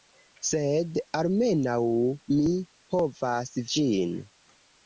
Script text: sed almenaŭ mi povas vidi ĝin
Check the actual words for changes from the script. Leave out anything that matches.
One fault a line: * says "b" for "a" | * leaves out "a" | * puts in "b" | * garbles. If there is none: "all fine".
* leaves out "vidi"